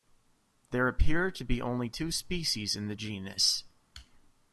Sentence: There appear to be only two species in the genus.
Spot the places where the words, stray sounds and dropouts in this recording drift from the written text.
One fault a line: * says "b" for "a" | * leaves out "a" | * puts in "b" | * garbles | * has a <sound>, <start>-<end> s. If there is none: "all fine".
all fine